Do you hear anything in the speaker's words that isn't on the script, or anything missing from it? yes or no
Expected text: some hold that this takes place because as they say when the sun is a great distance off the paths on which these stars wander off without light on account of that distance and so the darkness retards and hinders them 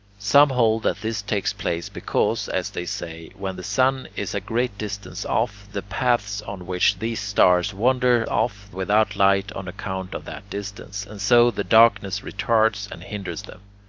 no